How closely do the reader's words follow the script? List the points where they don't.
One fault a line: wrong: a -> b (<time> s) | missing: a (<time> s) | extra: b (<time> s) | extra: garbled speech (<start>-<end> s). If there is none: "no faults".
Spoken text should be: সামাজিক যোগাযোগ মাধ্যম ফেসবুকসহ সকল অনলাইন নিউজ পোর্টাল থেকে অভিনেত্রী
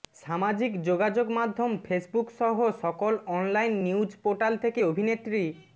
no faults